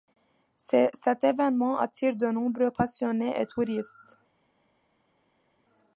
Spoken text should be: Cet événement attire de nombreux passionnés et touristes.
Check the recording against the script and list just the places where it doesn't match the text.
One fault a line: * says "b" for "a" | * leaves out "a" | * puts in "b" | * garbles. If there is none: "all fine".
all fine